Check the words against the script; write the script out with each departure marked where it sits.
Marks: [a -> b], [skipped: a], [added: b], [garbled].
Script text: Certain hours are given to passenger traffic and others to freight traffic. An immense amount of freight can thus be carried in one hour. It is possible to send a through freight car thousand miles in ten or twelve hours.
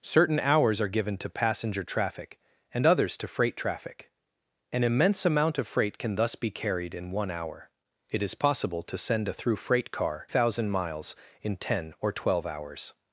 Certain hours are given to passenger traffic and others to freight traffic. An immense amount of freight can thus be carried in one hour. It is possible to send a through freight car thousand miles in ten or twelve hours.